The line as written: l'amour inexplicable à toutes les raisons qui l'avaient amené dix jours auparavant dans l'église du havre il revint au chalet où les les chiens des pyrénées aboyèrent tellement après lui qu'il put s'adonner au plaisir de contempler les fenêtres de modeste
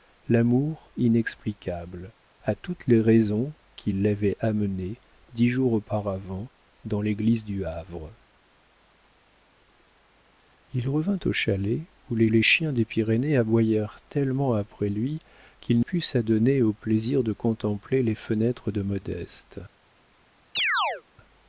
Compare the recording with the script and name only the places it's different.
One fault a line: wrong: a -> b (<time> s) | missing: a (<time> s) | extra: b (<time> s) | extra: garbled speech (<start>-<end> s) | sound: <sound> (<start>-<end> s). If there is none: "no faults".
sound: chirp (20.6-21.0 s)